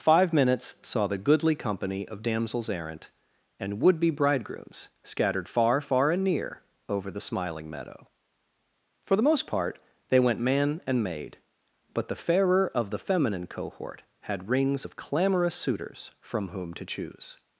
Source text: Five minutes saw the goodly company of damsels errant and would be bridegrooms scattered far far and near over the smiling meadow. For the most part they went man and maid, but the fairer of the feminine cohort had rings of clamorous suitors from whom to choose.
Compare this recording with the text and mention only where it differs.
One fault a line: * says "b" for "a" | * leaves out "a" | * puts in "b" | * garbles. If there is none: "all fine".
all fine